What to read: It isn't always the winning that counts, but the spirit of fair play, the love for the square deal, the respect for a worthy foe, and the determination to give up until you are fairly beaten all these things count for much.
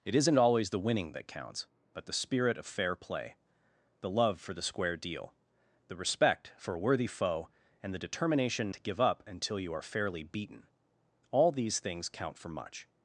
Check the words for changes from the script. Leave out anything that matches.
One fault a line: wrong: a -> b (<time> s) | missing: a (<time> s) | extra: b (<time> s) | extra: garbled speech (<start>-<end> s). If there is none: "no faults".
no faults